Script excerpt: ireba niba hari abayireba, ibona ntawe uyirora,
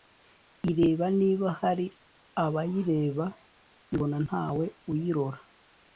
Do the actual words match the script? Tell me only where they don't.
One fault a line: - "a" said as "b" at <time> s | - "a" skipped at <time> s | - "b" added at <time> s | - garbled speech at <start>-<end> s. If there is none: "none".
none